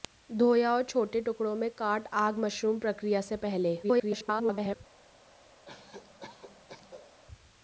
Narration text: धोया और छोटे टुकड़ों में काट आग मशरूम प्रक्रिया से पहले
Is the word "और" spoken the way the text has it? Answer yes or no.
yes